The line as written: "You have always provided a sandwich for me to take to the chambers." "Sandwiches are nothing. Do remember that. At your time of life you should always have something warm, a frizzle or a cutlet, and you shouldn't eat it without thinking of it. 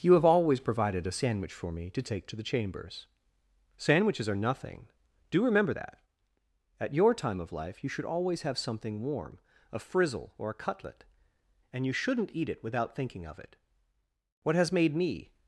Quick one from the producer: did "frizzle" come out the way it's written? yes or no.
yes